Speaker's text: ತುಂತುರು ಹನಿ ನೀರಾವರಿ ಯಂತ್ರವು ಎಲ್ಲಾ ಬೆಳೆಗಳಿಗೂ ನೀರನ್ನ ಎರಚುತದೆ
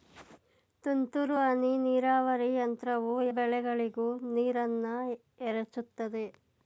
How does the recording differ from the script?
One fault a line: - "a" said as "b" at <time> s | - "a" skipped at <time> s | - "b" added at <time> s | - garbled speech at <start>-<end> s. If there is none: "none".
- "ಎಲ್ಲಾ" skipped at 3.1 s